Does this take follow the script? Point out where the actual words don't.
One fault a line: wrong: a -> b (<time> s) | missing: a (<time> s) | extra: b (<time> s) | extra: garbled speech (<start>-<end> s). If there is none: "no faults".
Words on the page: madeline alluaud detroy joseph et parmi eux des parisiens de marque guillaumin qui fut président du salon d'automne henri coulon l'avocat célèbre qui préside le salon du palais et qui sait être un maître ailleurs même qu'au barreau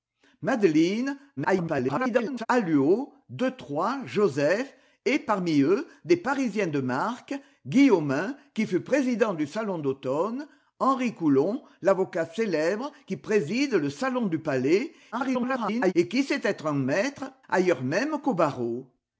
extra: garbled speech (1.4-2.5 s)
extra: garbled speech (15.1-15.9 s)